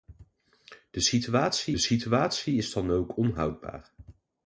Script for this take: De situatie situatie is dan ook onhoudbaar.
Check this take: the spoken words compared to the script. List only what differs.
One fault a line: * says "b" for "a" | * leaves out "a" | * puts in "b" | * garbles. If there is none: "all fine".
all fine